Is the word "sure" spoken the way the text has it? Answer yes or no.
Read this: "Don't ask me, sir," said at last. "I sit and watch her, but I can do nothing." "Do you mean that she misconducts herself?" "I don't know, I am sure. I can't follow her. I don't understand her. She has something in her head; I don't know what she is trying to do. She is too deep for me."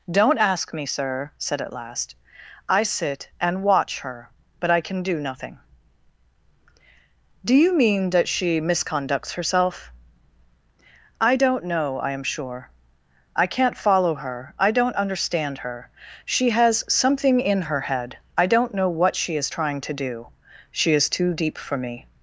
yes